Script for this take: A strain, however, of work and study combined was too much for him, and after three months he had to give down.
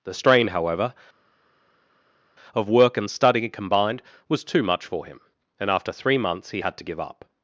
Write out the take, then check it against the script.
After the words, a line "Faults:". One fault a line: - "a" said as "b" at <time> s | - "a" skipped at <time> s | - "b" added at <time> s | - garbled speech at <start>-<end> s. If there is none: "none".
The strain, however, of work and study combined was too much for him, and after three months he had to give up.
Faults:
- "A" said as "The" at 0.0 s
- "down" said as "up" at 7.0 s